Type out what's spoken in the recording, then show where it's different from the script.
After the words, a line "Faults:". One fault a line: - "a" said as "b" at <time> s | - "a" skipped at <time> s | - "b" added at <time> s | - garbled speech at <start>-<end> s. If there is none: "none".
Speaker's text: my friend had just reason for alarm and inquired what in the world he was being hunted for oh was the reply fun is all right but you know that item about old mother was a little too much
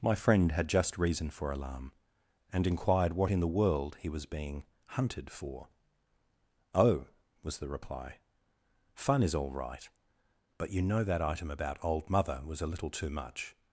my friend had just reason for alarm and inquired what in the world he was being hunted for oh was the reply fun is all right but you know that item about old mother was a little too much
Faults:
none